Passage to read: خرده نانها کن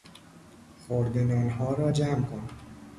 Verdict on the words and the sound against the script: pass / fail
fail